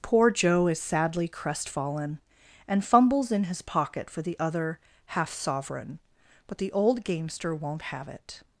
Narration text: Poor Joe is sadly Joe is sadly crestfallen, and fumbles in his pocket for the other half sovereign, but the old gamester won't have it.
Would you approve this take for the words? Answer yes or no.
no